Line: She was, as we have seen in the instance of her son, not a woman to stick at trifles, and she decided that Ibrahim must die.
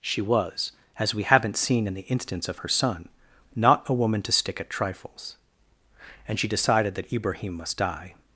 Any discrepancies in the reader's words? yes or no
yes